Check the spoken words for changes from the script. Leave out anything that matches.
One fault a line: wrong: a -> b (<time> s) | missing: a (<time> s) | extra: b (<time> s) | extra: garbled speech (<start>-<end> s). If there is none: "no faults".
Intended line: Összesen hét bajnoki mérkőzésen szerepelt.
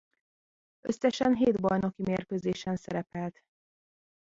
no faults